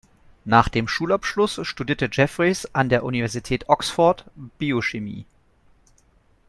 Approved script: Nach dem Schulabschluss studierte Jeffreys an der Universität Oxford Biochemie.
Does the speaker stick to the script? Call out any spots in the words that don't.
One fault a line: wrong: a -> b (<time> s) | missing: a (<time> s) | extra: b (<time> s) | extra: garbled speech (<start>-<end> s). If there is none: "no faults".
no faults